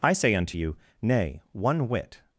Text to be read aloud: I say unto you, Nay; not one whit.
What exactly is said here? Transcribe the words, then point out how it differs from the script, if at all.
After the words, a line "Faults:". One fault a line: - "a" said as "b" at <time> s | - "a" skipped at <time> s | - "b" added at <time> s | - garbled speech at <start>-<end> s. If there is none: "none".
I say unto you, Nay; one whit.
Faults:
- "not" skipped at 1.4 s